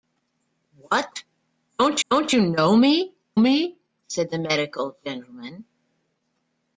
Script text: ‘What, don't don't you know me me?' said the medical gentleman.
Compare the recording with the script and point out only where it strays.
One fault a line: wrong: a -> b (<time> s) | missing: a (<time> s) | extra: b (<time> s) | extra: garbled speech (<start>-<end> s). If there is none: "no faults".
no faults